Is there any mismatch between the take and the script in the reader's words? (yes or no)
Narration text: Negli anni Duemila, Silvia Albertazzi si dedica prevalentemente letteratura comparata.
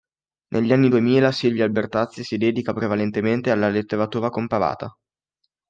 yes